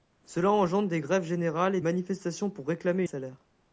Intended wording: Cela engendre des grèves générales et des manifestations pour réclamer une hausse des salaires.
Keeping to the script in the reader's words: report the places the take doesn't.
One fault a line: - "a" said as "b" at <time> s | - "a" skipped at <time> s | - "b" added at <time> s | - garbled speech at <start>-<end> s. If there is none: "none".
- "des" skipped at 1.8 s
- "une hausse des" skipped at 3.0 s